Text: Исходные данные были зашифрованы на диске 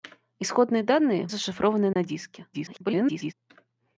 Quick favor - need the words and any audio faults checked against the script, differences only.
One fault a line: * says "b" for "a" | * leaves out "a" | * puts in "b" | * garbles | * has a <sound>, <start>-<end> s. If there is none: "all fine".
* leaves out "были"
* has a dropout, 1.9-2.0 s
* garbles